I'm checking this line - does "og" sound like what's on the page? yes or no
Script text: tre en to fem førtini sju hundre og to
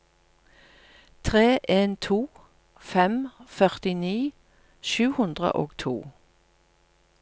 yes